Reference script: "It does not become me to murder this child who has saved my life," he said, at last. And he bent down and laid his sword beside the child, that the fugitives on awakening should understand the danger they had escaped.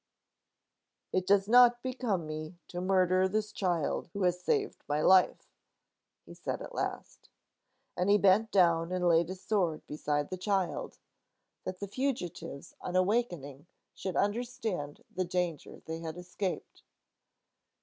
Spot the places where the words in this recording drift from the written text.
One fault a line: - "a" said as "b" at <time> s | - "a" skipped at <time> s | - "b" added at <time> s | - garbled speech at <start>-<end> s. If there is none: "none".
none